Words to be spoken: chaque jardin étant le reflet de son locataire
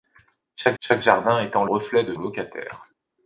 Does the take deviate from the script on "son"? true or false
true